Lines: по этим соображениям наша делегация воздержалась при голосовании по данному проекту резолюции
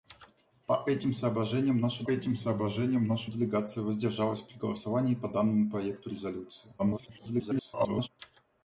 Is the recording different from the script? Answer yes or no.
yes